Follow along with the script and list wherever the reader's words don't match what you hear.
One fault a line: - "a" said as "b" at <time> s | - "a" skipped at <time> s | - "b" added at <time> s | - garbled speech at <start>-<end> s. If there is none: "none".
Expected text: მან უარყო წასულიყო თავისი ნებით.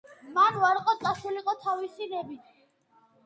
none